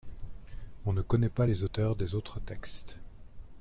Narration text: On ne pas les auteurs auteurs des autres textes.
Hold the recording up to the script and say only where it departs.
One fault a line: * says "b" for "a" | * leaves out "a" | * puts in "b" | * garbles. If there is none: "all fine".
* puts in "connaît"
* leaves out "auteurs"